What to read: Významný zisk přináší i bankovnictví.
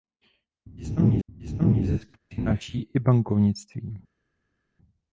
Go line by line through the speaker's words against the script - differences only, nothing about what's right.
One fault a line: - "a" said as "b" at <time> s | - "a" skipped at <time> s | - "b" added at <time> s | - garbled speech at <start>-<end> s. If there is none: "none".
- "významný" added at 1.3 s